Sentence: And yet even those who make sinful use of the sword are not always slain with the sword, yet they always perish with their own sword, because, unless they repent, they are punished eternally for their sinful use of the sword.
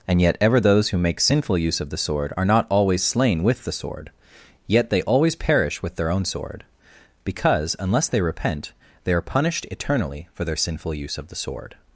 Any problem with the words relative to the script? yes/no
yes